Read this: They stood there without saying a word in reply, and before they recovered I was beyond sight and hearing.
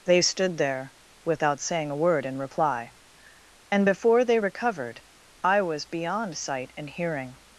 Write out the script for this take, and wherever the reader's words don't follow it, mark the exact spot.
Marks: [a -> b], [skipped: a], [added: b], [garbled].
They stood there without saying a word in reply, and before they recovered I was beyond sight and hearing.